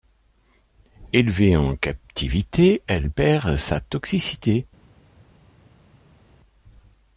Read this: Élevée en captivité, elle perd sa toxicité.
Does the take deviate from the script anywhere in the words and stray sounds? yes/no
no